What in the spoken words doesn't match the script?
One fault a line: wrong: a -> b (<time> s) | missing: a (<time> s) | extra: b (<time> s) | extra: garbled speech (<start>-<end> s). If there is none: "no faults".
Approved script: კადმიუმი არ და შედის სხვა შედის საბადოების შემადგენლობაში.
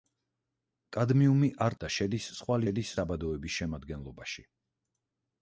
no faults